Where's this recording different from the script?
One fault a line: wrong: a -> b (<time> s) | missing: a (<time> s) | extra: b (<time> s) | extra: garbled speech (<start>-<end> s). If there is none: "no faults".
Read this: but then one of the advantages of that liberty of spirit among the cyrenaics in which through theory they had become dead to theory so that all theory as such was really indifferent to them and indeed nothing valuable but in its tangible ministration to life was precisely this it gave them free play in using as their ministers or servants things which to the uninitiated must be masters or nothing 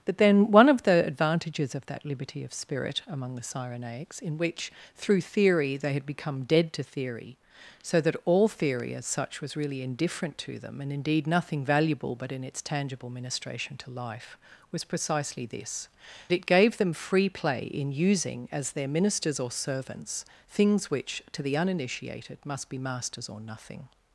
no faults